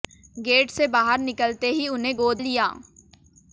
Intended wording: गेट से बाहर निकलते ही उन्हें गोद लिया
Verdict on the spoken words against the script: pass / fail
pass